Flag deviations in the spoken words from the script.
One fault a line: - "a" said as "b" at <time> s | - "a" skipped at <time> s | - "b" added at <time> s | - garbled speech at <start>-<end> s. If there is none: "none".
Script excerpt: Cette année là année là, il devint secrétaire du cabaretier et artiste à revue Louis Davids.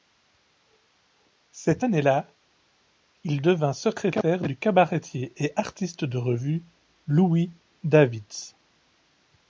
- "année là" skipped at 2.2 s
- "à" said as "de" at 6.0 s